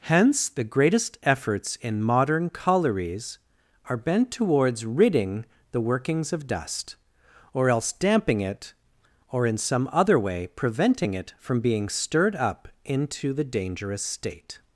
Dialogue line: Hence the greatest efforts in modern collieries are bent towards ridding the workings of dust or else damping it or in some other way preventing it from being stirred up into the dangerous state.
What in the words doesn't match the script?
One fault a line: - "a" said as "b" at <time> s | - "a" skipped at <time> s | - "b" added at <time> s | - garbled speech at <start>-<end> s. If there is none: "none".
none